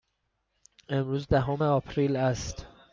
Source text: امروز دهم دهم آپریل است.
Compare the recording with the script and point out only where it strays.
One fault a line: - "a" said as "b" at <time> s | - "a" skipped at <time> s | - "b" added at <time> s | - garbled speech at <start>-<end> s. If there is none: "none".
- "دهم" skipped at 1.6 s